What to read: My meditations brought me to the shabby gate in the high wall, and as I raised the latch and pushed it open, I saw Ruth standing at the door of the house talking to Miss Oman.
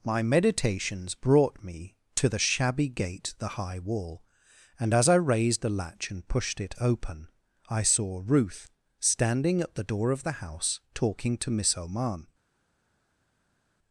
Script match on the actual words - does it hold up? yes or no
no